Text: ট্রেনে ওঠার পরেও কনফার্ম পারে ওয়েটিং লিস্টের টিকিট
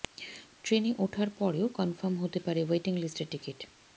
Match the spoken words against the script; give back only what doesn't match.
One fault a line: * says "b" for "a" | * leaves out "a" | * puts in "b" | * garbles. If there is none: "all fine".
* puts in "হতে"